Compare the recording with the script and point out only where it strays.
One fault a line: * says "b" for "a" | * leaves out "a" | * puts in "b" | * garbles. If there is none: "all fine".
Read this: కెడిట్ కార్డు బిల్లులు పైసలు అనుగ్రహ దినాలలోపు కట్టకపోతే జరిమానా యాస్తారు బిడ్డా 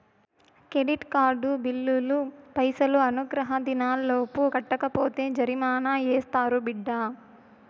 all fine